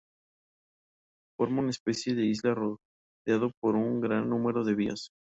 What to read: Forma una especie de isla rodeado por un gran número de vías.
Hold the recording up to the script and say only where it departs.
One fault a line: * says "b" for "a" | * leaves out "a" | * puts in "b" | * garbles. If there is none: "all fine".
all fine